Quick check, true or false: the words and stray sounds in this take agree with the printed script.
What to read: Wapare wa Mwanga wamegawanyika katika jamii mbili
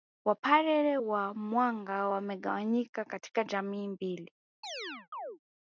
false